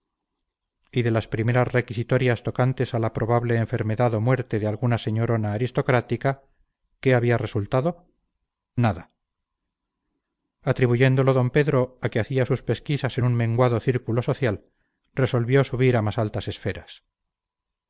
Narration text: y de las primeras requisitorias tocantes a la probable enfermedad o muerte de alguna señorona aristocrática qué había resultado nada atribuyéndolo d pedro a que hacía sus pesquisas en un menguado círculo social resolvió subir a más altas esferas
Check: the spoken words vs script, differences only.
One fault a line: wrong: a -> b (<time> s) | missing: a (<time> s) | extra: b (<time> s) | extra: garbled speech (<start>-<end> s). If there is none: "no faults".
no faults